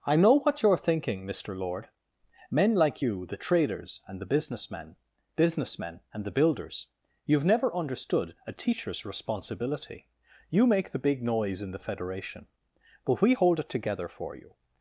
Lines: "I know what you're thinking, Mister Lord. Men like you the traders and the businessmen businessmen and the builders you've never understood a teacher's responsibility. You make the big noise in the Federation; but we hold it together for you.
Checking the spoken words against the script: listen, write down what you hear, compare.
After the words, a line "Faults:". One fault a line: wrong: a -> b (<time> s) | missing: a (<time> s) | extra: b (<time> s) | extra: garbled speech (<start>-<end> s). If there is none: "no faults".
"I know what you're thinking, Mister Lord. Men like you the traders and the businessmen businessmen and the builders you've never understood a teacher's responsibility. You make the big noise in the Federation; but we hold it together for you.
Faults:
no faults